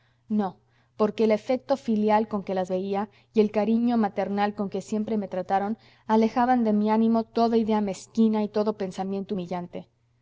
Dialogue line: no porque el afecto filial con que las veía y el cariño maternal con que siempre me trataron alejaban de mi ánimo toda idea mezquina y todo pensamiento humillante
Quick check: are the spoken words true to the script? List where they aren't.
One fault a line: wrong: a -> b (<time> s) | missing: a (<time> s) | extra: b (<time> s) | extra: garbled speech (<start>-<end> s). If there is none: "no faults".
no faults